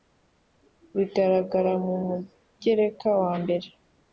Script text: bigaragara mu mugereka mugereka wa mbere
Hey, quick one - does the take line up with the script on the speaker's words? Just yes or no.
no